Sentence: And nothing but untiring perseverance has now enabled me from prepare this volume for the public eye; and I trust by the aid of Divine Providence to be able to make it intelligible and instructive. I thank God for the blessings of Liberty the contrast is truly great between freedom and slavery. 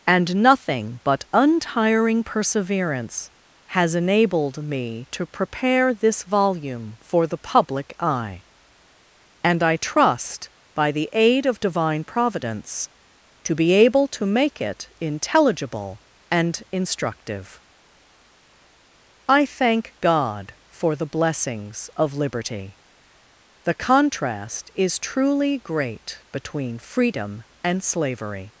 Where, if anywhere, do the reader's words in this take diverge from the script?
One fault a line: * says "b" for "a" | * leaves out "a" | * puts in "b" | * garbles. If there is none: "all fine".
* leaves out "now"
* says "to" for "from"